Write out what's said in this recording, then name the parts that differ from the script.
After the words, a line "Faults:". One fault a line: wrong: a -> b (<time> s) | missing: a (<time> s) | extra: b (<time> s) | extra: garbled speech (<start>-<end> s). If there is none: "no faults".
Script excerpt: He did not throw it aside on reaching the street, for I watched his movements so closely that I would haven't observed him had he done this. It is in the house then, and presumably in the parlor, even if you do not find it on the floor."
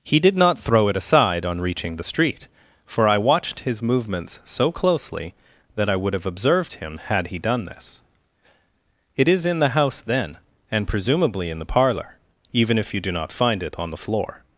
He did not throw it aside on reaching the street, for I watched his movements so closely that I would have observed him had he done this. It is in the house then, and presumably in the parlor, even if you do not find it on the floor."
Faults:
wrong: haven't -> have (6.1 s)